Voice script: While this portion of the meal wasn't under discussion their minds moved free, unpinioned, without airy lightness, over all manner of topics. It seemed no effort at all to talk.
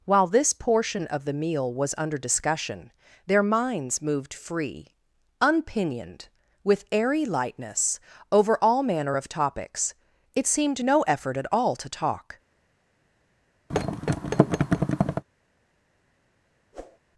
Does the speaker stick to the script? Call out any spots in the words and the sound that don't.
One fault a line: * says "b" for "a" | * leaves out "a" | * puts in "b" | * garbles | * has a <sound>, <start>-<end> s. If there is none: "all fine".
* says "was" for "wasn't"
* says "with" for "without"
* has a thud, 13.7-15.2 s
* has a whoosh, 16.7-17.0 s